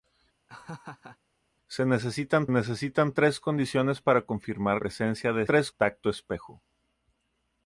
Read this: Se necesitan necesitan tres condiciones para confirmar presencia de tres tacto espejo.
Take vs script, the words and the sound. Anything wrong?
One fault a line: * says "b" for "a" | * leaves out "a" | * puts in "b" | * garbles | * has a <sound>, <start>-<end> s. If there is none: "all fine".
* has a laugh, 0.5-1.2 s